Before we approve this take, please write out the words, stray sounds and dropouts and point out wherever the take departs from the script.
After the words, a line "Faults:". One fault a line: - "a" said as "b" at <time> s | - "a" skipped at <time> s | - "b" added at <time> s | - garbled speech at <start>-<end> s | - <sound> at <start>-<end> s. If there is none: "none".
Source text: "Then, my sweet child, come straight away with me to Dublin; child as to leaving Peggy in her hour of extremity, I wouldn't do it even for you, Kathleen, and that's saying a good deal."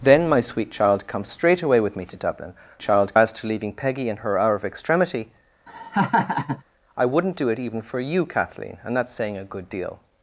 "Then, my sweet child, come straight away with me to Dublin; child as to leaving Peggy in her hour of extremity, I wouldn't do it even for you, Kathleen, and that's saying a good deal."
Faults:
- laugh at 5.7-6.6 s